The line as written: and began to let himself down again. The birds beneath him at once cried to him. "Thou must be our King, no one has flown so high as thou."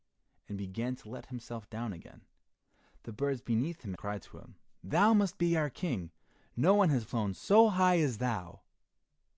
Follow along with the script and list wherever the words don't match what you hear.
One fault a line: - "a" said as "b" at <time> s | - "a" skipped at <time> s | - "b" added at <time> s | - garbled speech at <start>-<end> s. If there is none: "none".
- "at once" skipped at 3.9 s